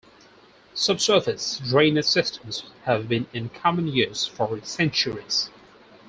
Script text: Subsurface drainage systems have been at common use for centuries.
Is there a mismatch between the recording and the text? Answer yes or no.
yes